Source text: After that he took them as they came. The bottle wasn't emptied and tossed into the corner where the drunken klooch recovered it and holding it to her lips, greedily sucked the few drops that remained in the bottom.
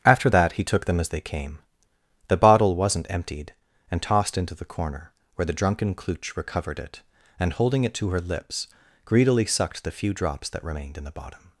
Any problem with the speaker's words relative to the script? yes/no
no